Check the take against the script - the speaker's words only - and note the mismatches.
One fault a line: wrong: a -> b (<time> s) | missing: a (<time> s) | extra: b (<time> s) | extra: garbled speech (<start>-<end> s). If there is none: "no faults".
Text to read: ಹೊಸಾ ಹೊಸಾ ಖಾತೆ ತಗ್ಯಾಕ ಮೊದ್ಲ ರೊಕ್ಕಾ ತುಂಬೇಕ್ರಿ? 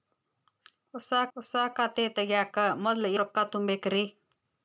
no faults